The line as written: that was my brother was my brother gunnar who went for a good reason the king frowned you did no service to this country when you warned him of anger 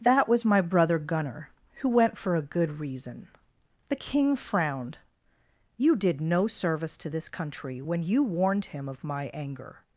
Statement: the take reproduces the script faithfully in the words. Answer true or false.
false